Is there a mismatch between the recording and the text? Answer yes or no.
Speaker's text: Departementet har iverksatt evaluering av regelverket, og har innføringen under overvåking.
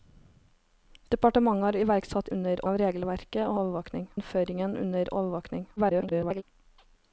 yes